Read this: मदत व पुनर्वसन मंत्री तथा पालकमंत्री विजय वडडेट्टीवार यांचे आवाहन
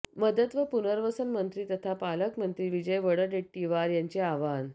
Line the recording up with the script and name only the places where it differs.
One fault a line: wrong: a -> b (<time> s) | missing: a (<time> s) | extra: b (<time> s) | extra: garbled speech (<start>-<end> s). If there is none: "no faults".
no faults